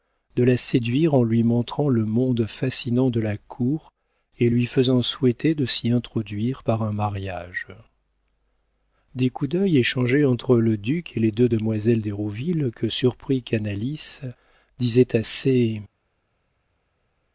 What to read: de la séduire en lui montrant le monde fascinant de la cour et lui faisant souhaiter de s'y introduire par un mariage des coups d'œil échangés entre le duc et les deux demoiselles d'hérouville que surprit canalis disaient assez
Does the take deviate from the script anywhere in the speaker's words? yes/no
no